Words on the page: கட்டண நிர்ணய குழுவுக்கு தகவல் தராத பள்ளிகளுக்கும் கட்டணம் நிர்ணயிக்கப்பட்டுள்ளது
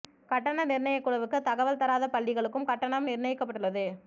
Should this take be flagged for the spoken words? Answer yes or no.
no